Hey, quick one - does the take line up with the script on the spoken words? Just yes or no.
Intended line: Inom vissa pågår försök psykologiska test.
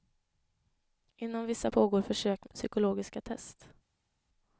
yes